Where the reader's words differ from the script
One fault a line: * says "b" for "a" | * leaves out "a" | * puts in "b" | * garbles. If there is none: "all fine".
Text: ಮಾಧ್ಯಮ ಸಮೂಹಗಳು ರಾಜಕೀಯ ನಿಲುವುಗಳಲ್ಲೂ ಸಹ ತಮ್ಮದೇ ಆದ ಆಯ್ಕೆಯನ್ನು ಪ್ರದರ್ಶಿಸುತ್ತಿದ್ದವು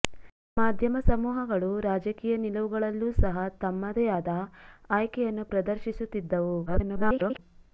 * garbles